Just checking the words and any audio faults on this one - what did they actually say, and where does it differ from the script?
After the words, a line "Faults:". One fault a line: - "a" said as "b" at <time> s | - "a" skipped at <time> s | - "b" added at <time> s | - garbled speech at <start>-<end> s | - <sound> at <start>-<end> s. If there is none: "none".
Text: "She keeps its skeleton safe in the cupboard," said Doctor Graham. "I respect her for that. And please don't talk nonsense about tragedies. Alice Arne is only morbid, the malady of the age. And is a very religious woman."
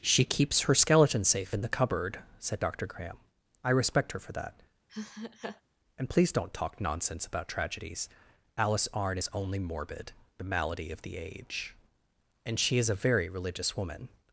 "She keeps her skeleton safe in the cupboard," said Doctor Graham. "I respect her for that. And please don't talk nonsense about tragedies. Alice Arne is only morbid, the malady of the age. And she is a very religious woman."
Faults:
- "its" said as "her" at 0.6 s
- laugh at 4.9-5.6 s
- "she" added at 12.6 s